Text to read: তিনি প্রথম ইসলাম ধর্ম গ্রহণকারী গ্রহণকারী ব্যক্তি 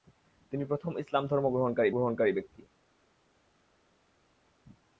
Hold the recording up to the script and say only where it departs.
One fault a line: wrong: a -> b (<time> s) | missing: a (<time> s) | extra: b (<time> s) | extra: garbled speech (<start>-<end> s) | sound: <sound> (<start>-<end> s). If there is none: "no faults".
no faults